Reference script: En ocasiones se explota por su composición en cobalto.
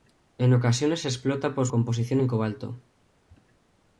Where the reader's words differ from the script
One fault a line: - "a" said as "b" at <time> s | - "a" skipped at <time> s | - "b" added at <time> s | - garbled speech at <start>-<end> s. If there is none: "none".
- "su" skipped at 1.7 s